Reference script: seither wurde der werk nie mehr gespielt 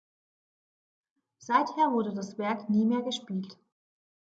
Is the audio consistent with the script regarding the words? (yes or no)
no